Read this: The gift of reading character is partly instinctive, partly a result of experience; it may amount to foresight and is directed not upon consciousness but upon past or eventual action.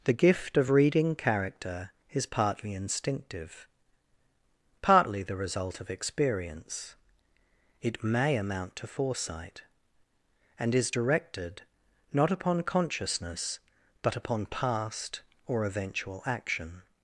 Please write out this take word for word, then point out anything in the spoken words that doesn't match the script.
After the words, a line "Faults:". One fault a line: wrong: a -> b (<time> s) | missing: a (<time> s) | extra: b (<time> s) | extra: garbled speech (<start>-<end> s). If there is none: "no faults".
The gift of reading character is partly instinctive, partly the result of experience; it may amount to foresight and is directed not upon consciousness but upon past or eventual action.
Faults:
wrong: a -> the (5.2 s)